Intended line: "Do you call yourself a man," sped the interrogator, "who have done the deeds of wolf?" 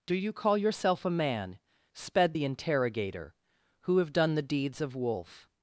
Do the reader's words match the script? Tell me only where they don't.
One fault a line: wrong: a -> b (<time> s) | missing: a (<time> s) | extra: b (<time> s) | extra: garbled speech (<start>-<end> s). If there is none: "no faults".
no faults